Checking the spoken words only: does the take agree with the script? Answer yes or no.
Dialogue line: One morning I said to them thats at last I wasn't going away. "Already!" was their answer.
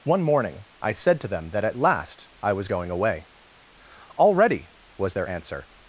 no